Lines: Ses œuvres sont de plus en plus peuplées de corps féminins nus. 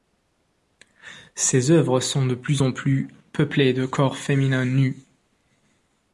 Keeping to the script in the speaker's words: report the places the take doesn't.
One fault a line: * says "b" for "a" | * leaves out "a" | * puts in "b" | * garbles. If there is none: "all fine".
all fine